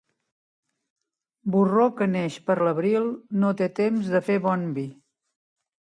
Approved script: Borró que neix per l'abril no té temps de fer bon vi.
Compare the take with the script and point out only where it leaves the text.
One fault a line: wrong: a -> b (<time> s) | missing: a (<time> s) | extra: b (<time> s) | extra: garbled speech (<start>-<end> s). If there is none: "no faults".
no faults